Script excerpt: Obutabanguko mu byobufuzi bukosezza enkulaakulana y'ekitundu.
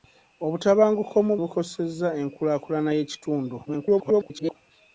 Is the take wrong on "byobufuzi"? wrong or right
wrong